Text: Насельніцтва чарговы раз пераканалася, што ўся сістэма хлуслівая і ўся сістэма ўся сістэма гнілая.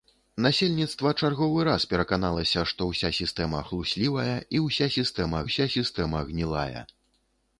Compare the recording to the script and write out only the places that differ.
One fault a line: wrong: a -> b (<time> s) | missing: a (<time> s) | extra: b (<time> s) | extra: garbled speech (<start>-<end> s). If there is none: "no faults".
no faults